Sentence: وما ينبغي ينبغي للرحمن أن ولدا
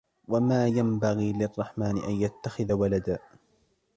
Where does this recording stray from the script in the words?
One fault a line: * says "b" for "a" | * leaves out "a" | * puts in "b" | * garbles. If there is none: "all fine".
* leaves out "ينبغي"
* puts in "يتخذ"